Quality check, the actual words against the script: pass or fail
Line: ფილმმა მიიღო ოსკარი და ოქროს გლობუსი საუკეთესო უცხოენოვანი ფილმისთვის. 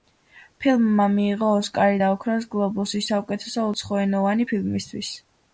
pass